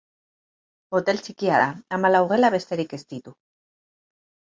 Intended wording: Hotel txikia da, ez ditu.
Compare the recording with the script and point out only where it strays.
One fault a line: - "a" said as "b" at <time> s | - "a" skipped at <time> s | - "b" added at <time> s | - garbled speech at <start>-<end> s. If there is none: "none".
- "hamalau gela besterik" added at 2.0 s